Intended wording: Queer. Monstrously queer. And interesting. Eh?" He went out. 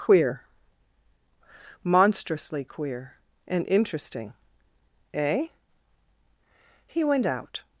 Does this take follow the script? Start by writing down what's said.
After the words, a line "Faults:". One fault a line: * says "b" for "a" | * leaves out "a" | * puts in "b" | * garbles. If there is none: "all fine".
Queer. Monstrously queer. And interesting. Eh?" He went out.
Faults:
all fine